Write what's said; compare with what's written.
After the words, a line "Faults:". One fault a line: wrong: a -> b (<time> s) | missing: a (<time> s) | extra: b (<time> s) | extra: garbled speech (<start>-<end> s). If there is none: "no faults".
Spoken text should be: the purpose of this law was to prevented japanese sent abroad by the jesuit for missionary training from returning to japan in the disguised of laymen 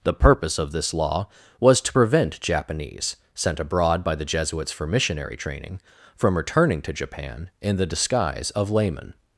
the purpose of this law was to prevent japanese sent abroad by the jesuits for missionary training from returning to japan in the disguise of laymen
Faults:
wrong: prevented -> prevent (1.9 s)
wrong: jesuit -> jesuits (4.2 s)
wrong: disguised -> disguise (7.9 s)